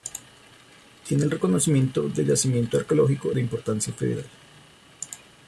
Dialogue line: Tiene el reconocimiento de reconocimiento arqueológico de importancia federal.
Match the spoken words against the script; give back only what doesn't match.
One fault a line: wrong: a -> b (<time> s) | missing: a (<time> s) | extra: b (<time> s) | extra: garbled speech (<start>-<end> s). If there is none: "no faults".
wrong: reconocimiento -> yacimiento (2.2 s)